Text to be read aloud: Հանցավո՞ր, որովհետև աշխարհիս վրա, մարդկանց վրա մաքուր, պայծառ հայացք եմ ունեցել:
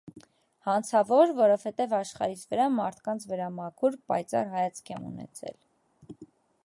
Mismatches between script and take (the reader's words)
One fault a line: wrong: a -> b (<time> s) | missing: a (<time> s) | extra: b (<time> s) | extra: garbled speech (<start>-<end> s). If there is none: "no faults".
no faults